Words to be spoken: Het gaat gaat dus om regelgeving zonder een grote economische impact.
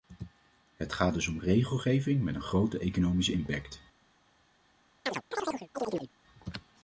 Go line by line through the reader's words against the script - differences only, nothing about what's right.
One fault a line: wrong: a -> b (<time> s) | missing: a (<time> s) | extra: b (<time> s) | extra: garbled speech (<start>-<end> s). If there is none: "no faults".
missing: gaat (1.1 s)
wrong: zonder -> met (2.2 s)